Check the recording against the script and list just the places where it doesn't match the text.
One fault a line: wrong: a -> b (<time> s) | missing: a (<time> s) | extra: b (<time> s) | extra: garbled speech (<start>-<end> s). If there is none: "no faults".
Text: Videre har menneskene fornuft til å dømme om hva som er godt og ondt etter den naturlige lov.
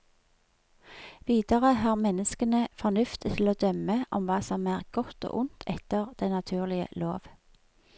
no faults